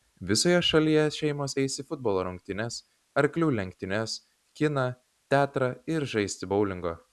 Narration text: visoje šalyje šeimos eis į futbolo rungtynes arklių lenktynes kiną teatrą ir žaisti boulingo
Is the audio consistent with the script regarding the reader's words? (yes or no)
yes